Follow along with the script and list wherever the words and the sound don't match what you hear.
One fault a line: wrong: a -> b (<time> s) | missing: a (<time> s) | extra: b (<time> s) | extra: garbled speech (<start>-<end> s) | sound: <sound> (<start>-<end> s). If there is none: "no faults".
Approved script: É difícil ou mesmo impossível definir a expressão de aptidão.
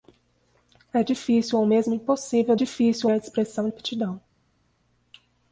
wrong: definir -> difícil (2.5 s)
missing: de (3.7 s)